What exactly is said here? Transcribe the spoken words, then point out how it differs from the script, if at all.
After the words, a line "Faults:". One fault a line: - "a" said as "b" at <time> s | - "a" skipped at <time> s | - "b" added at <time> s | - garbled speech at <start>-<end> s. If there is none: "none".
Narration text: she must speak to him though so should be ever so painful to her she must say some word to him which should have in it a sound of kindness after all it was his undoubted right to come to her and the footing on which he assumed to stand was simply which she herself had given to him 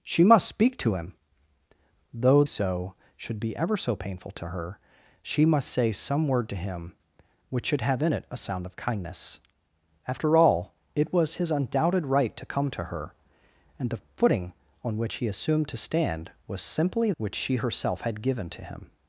she must speak to him though so should be ever so painful to her she must say some word to him which should have in it a sound of kindness after all it was his undoubted right to come to her and the footing on which he assumed to stand was simply which she herself had given to him
Faults:
none